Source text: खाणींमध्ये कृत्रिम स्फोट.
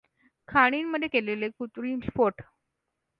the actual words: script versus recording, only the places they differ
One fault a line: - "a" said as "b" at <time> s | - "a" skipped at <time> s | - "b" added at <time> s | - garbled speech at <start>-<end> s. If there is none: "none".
- "केलेले" added at 1.1 s